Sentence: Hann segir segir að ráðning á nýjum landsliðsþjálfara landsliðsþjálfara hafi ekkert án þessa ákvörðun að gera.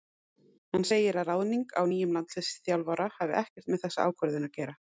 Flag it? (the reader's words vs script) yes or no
yes